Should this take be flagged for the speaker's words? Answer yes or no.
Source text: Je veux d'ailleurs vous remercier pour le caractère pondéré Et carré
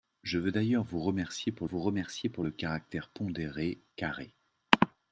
yes